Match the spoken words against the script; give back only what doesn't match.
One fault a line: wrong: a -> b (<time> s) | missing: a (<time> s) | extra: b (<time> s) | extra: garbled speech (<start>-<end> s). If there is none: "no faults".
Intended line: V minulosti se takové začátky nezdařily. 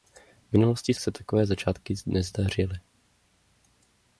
no faults